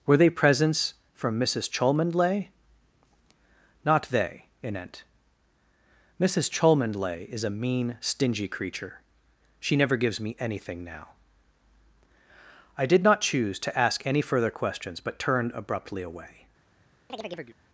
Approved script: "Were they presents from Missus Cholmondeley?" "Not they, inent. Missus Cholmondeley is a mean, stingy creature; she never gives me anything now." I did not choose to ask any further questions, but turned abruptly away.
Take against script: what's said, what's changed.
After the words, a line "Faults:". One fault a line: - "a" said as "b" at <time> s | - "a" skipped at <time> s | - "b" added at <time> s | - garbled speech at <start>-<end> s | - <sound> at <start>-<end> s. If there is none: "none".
"Were they presents from Missus Cholmondeley?" "Not they, inent. Missus Cholmondeley is a mean, stingy creature; she never gives me anything now." I did not choose to ask any further questions, but turned abruptly away.
Faults:
- chirp at 17.1-17.6 s